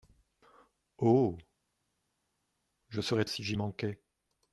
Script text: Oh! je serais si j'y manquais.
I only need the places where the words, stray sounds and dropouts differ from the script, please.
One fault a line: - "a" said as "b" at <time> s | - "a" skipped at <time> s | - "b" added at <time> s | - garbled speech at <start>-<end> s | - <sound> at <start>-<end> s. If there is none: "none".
none